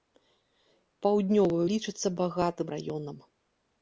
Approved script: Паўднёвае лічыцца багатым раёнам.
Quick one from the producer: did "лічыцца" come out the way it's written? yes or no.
yes